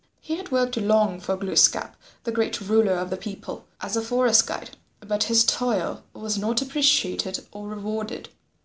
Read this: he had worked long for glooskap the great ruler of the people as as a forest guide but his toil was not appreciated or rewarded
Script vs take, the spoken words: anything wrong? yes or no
yes